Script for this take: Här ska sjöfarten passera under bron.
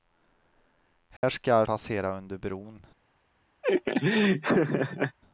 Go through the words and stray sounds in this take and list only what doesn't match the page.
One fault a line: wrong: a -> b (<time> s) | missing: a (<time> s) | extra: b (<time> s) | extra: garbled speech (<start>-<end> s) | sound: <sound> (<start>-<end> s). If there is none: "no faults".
sound: dropout (1.2-1.2 s)
missing: sjöfarten (1.6 s)
sound: laugh (3.6-5.2 s)